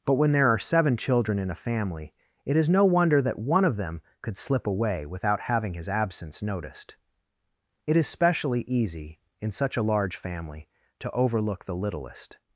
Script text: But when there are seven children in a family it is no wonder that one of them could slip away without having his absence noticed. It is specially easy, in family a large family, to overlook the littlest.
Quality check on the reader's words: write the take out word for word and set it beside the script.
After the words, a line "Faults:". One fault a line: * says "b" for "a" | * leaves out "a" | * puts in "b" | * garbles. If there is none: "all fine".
But when there are seven children in a family it is no wonder that one of them could slip away without having his absence noticed. It is specially easy, in such a large family, to overlook the littlest.
Faults:
* says "such" for "family"